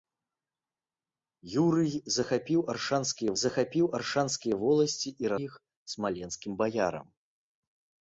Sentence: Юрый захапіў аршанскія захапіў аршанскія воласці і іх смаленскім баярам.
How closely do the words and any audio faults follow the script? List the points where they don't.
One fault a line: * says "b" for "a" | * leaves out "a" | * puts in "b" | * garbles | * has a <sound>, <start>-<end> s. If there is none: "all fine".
all fine